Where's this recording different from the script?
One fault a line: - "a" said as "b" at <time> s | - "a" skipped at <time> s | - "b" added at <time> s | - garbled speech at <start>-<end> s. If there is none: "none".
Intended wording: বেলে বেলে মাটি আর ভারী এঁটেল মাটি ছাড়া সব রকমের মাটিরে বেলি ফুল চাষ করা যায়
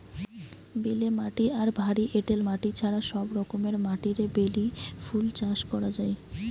- "বেলে" skipped at 1.1 s